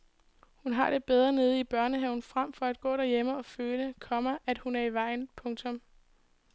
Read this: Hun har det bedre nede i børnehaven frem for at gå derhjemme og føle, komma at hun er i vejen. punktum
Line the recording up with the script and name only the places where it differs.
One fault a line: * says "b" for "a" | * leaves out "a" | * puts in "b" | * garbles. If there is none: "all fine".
all fine